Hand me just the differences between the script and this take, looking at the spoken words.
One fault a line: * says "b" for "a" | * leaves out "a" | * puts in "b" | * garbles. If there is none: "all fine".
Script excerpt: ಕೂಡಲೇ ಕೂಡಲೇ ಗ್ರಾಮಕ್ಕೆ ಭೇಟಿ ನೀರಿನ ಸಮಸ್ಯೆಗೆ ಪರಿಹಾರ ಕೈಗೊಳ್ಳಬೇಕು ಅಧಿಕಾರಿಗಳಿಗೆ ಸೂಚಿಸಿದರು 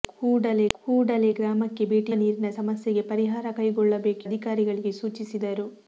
all fine